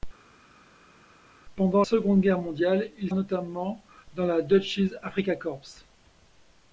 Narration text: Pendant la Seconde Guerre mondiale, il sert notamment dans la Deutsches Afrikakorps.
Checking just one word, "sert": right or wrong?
wrong